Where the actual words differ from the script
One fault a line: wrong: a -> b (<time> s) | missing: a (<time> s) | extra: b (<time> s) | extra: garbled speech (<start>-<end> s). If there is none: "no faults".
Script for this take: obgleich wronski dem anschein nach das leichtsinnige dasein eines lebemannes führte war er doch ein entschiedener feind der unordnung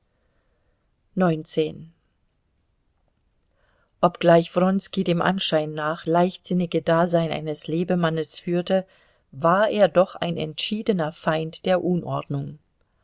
missing: das (6.1 s)